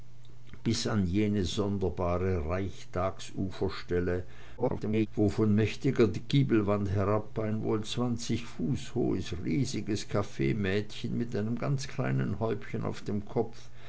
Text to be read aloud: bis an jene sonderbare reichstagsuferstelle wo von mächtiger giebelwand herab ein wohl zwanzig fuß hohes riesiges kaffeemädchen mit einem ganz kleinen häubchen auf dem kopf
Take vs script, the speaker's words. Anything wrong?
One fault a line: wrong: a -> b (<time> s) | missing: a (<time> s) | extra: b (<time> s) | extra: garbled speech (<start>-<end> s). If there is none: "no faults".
extra: garbled speech (4.6-5.1 s)